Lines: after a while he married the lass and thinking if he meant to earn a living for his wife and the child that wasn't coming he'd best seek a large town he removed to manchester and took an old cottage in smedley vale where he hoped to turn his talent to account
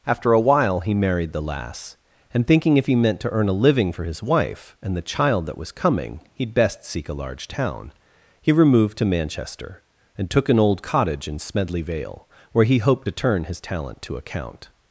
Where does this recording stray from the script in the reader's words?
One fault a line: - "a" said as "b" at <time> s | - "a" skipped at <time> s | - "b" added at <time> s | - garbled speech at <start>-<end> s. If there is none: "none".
- "wasn't" said as "was" at 5.6 s